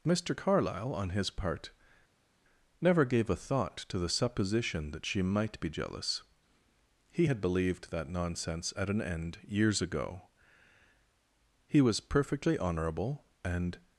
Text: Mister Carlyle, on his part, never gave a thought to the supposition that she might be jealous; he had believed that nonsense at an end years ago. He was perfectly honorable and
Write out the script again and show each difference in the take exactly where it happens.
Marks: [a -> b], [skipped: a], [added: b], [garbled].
Mister Carlyle, on his part, never gave a thought to the supposition that she might be jealous; he had believed that nonsense at an end years ago. He was perfectly honorable and